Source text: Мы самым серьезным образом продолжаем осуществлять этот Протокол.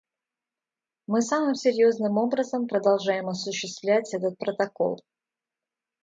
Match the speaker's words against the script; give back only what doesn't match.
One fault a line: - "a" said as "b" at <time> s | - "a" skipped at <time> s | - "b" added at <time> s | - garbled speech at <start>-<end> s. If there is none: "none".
none